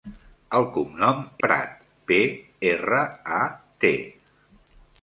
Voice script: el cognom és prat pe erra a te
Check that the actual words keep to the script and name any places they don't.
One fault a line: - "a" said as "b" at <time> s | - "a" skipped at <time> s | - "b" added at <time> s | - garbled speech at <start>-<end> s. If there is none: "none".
- "és" skipped at 1.2 s